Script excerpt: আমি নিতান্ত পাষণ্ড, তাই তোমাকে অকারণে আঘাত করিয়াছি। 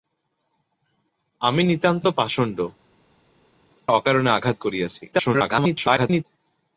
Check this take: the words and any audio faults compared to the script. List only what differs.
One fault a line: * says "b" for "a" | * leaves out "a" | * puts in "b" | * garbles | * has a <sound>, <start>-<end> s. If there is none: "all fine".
* leaves out "তাই তোমাকে"
* garbles